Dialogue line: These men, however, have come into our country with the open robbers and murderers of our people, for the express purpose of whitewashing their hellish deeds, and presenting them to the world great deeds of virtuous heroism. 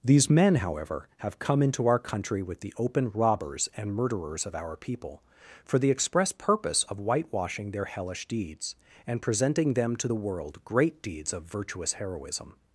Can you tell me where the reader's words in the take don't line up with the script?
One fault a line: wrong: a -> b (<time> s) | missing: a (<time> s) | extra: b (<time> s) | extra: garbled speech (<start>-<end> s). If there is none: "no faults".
no faults